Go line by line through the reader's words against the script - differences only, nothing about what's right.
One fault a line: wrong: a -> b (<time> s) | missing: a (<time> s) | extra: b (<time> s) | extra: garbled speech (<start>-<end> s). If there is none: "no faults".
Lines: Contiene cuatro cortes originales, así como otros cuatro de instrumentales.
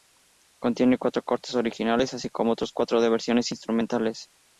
extra: versiones (3.1 s)